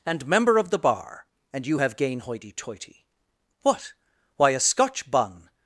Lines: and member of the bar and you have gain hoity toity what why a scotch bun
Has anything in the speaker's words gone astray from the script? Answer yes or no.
no